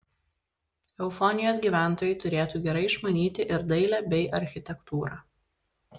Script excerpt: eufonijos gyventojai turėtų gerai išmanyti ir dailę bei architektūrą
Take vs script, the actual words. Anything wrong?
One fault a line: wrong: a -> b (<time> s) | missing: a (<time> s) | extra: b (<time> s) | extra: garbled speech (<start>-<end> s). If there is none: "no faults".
no faults